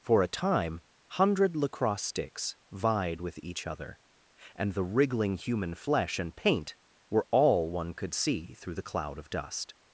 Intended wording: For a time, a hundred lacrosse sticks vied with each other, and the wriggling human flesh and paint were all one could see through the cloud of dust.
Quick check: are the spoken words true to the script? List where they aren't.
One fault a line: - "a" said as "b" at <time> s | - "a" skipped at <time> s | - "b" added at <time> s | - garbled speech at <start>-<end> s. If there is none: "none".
- "a" skipped at 0.8 s